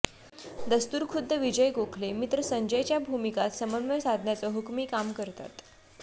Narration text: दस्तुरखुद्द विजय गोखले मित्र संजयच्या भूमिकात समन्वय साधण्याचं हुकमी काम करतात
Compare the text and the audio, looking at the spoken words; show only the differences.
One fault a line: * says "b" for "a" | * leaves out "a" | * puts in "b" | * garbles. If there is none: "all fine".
all fine